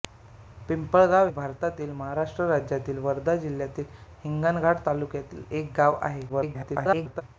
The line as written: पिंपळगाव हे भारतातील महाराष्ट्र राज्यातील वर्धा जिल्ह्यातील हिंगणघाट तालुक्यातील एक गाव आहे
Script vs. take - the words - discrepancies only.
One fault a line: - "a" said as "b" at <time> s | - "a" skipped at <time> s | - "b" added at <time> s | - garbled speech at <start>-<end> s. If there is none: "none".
- "हे" skipped at 1.3 s
- garbled speech at 6.3-7.2 s